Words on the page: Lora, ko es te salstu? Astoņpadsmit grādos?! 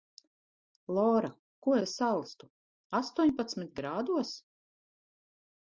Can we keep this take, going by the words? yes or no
no